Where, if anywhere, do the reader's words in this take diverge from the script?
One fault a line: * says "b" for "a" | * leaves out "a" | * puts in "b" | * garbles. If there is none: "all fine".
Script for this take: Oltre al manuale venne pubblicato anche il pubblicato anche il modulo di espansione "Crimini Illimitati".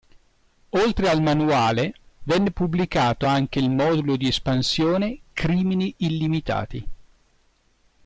* leaves out "pubblicato anche il"